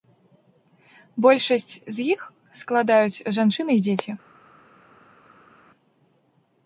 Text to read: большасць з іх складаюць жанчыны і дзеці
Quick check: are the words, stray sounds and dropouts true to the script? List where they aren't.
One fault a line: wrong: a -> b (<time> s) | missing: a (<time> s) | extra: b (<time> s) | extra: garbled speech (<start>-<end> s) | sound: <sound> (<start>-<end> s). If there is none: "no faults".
no faults